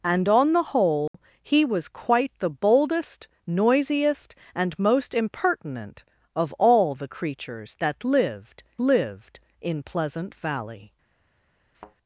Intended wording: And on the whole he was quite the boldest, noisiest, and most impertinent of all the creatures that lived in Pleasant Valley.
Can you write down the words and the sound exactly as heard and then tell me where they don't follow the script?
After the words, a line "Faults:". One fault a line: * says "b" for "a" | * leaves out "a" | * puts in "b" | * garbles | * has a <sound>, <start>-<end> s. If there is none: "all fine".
And on the whole he was quite the boldest, noisiest, and most impertinent of all the creatures that lived lived in Pleasant Valley.
Faults:
* has a dropout, 1.1-1.1 s
* puts in "lived"
* has a thud, 11.7-12.0 s